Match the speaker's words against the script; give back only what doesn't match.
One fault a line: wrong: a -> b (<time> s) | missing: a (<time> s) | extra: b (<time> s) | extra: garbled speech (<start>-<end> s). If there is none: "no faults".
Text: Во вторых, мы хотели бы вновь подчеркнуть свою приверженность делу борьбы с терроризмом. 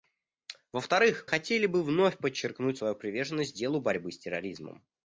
missing: мы (1.2 s)